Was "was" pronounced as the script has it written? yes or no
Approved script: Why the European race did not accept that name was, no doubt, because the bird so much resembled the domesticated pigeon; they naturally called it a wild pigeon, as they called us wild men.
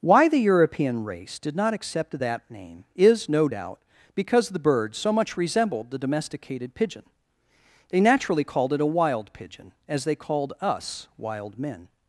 no